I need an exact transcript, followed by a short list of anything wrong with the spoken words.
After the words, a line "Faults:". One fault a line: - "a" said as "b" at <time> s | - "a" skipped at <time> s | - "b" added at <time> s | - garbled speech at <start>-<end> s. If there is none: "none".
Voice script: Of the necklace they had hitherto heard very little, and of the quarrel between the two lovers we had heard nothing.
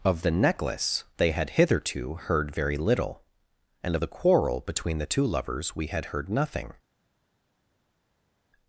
Of the necklace they had hitherto heard very little, and of the quarrel between the two lovers we had heard nothing.
Faults:
none